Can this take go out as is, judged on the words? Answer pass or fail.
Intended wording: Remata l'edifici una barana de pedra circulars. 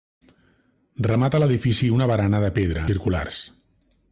pass